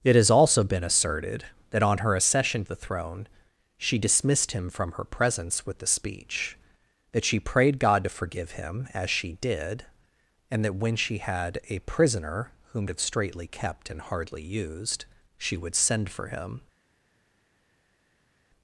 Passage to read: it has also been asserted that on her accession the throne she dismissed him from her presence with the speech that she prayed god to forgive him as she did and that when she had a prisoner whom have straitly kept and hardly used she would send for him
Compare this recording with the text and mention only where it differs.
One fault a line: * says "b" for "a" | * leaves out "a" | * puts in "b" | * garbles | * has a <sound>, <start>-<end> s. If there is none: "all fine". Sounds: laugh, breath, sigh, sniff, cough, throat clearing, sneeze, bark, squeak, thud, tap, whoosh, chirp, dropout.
all fine